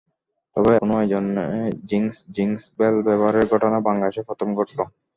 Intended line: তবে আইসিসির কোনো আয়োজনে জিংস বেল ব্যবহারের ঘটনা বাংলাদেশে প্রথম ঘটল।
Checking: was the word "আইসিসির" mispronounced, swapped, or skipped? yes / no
yes